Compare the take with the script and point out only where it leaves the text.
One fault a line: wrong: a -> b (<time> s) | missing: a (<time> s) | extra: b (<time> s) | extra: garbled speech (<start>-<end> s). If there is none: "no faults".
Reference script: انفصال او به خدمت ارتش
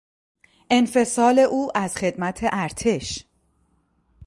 wrong: به -> از (1.8 s)